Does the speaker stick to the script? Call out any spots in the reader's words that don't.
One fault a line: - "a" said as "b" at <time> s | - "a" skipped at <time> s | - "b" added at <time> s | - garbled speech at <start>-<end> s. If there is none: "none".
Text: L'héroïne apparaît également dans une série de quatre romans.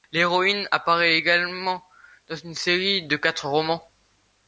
none